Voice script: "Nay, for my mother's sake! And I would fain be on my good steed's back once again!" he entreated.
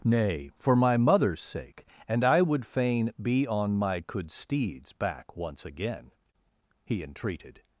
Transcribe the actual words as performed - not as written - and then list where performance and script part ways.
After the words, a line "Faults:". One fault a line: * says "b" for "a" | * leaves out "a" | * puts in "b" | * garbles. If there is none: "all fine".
"Nay, for my mother's sake! And I would fain be on my could steed's back once again!" he entreated.
Faults:
* says "could" for "good"